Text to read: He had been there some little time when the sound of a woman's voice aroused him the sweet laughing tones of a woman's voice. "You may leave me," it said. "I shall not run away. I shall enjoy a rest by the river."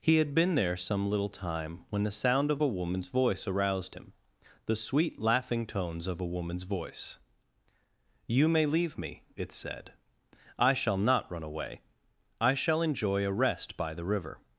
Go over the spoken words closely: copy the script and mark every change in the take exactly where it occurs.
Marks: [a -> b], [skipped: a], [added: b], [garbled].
He had been there some little time when the sound of a woman's voice aroused him the sweet laughing tones of a woman's voice. "You may leave me," it said. "I shall not run away. I shall enjoy a rest by the river."